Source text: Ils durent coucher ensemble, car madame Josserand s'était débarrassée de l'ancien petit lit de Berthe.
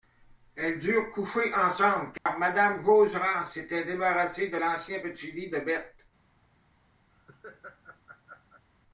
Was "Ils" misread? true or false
true